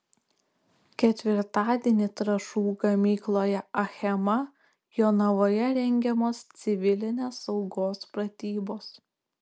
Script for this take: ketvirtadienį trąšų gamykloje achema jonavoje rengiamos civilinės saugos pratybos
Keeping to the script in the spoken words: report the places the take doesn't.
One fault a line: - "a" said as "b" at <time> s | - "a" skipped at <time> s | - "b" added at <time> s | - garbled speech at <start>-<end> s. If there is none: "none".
none